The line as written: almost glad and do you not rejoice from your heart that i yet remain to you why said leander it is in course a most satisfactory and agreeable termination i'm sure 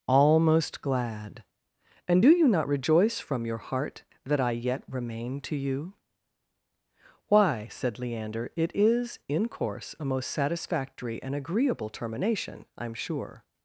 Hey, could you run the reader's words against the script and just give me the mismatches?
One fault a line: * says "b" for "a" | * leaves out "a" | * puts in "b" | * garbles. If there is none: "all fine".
all fine